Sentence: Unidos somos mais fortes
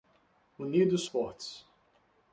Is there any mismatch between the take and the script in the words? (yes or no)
yes